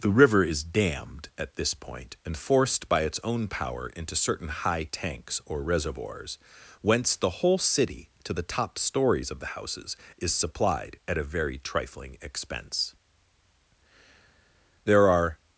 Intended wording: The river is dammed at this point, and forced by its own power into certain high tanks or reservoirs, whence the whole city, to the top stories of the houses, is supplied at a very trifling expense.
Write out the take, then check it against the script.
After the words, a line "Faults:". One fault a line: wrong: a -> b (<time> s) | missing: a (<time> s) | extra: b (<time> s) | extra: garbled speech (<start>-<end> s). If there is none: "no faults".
The river is dammed at this point, and forced by its own power into certain high tanks or reservoirs, whence the whole city, to the top stories of the houses, is supplied at a very trifling expense. There are
Faults:
extra: There are (14.8 s)